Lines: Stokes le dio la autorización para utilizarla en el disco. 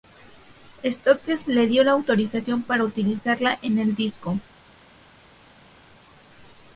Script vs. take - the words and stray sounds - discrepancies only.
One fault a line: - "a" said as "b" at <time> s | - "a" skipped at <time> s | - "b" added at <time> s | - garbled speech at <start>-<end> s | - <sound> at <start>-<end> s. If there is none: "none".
none